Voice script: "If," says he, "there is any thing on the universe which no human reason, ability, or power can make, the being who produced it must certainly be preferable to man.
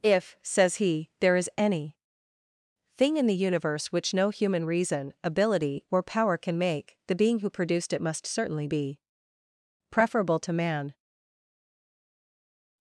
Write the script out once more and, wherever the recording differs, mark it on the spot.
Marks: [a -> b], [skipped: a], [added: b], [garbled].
"If," says he, "there is any thing [on -> in] the universe which no human reason, ability, or power can make, the being who produced it must certainly be preferable to man.